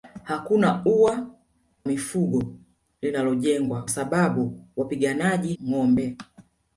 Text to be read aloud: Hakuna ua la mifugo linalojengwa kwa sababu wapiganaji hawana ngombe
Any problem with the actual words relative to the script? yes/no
yes